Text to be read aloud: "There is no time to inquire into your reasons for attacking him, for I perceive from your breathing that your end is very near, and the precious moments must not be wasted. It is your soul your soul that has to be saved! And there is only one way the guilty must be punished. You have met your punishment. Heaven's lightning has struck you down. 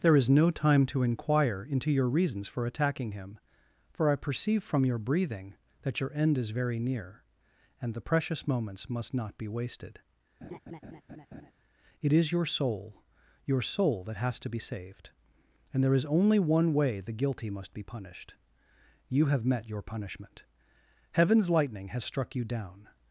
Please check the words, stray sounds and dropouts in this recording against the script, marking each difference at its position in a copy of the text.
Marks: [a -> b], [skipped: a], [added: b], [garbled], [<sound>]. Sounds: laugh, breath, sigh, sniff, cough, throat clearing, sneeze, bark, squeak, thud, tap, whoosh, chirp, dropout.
"There is no time to inquire into your reasons for attacking him, for I perceive from your breathing that your end is very near, and the precious moments must not be wasted. [laugh] It is your soul your soul that has to be saved! And there is only one way the guilty must be punished. You have met your punishment. Heaven's lightning has struck you down.